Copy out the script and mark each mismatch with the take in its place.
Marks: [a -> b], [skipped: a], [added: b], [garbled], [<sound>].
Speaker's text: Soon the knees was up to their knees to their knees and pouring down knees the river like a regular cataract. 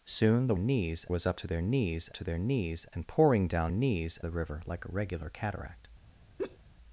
Soon the knees was up to their knees to their knees and pouring down knees the river like a regular cataract. [laugh]